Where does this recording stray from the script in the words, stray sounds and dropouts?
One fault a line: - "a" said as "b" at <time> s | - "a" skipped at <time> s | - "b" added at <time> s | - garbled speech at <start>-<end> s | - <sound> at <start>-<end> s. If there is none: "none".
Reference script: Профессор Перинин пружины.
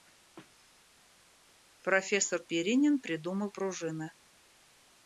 - "придумал" added at 3.0 s